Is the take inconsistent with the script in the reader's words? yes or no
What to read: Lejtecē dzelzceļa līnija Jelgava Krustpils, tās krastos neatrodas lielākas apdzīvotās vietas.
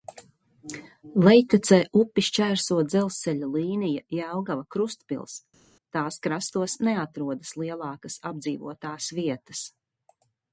yes